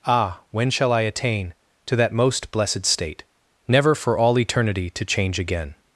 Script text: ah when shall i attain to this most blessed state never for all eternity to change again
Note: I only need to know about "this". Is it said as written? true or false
false